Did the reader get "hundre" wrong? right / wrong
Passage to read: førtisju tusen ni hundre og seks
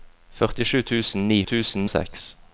wrong